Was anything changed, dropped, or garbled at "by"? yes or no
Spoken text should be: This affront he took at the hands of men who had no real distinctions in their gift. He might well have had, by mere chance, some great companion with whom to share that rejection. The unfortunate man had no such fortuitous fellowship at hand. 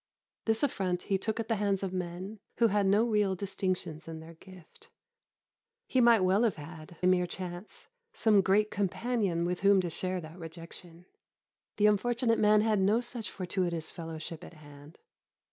yes